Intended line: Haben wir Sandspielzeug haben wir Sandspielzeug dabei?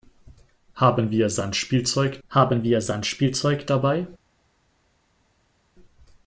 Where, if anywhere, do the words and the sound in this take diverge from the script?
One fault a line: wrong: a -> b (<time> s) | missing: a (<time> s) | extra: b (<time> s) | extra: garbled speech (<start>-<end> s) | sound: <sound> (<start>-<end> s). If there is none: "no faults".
no faults